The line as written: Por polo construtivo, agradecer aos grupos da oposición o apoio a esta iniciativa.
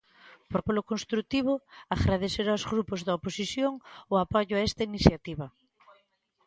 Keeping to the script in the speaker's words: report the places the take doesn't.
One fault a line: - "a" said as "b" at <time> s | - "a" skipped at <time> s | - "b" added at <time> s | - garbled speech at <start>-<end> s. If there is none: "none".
none